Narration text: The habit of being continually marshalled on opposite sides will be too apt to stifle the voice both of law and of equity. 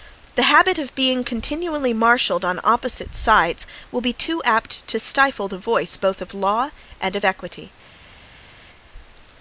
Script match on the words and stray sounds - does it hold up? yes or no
yes